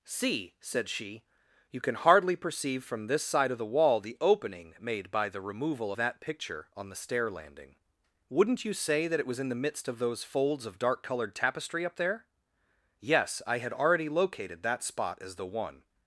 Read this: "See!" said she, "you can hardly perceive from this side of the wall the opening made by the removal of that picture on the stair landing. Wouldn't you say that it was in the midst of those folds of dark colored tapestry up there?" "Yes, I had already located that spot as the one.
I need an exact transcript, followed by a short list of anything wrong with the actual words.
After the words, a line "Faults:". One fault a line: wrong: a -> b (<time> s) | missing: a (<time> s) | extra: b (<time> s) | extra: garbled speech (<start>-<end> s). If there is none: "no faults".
"See!" said she, "you can hardly perceive from this side of the wall the opening made by the removal that picture on the stair landing. Wouldn't you say that it was in the midst of those folds of dark colored tapestry up there?" "Yes, I had already located that spot as the one.
Faults:
missing: of (5.9 s)